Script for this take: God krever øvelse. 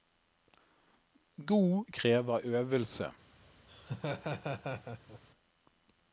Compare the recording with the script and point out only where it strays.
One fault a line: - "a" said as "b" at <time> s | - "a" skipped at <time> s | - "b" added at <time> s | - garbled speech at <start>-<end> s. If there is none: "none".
none